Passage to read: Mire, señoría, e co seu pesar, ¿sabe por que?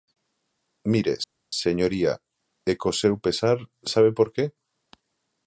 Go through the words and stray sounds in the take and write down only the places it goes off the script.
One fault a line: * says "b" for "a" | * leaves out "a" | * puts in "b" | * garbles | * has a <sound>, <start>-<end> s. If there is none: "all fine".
all fine